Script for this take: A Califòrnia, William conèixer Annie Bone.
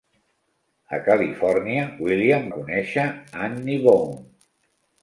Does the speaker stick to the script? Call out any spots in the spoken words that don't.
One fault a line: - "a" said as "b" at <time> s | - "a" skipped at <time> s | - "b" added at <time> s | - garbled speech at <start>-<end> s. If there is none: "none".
none